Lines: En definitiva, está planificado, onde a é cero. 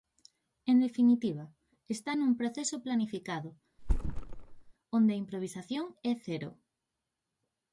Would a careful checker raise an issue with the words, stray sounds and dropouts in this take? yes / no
yes